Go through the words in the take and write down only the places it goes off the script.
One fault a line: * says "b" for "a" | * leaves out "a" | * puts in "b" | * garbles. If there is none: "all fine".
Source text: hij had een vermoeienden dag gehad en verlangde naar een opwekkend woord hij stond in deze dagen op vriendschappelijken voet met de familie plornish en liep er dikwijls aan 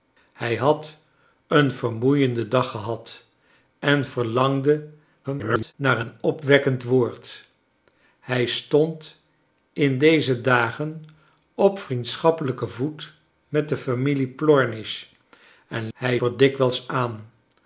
* garbles
* says "hij" for "liep"